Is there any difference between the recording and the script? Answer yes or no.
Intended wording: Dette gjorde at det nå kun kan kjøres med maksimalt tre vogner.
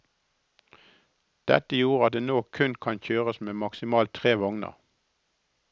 no